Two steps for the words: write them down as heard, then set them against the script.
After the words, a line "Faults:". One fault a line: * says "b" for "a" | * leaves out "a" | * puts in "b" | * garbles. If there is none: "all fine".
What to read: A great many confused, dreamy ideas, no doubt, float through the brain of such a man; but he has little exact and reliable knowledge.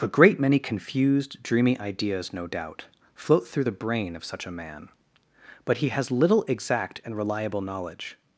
A great many confused, dreamy ideas, no doubt, float through the brain of such a man; but he has little exact and reliable knowledge.
Faults:
all fine